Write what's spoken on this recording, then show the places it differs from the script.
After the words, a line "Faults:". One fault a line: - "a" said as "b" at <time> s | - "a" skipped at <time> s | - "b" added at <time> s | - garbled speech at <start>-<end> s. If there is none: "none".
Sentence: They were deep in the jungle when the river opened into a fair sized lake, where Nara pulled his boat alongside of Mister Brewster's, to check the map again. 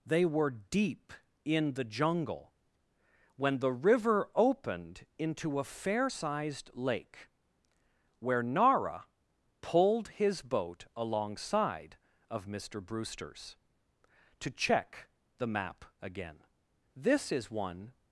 They were deep in the jungle when the river opened into a fair sized lake, where Nara pulled his boat alongside of Mister Brewster's, to check the map again. "This is one
Faults:
- "This is one" added at 16.9 s